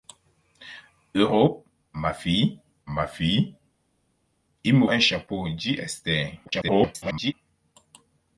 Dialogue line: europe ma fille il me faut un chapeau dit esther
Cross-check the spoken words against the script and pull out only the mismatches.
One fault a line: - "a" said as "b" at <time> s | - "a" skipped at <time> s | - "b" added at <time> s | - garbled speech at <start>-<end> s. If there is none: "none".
- "ma fille" added at 2.9 s
- "faut" skipped at 4.9 s
- garbled speech at 6.5-7.3 s